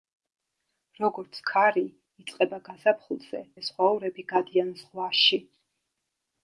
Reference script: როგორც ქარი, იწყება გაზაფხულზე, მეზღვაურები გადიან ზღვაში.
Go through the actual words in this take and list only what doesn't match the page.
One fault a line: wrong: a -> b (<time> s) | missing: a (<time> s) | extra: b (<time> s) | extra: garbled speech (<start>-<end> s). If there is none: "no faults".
no faults